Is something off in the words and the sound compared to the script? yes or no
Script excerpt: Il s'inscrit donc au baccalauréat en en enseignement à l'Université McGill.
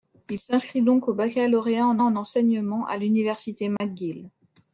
yes